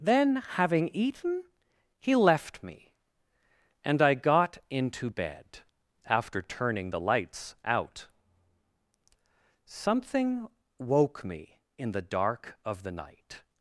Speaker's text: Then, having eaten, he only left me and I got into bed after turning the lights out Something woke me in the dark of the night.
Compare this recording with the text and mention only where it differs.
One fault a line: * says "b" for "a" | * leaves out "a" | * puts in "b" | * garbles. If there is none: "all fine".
* leaves out "only"